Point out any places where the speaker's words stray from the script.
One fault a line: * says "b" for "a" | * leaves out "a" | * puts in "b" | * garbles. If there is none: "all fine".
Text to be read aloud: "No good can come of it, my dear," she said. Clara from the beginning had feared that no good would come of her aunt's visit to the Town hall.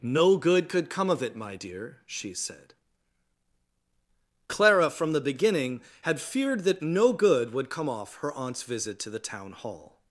* says "could" for "can"
* says "off" for "of"